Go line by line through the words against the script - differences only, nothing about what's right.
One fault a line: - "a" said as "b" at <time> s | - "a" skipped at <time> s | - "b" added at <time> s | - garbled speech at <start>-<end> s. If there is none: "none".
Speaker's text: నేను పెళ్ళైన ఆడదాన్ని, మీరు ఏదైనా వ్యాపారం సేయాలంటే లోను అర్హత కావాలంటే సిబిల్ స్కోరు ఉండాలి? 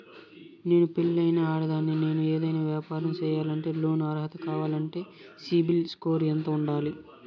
- "మీరు" said as "నేను" at 2.0 s
- "ఎంత" added at 6.3 s